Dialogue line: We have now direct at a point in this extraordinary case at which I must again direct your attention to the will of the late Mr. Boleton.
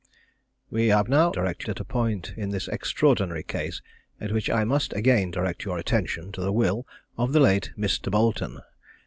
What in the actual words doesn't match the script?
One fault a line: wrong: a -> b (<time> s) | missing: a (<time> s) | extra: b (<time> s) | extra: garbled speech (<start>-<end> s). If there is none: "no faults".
no faults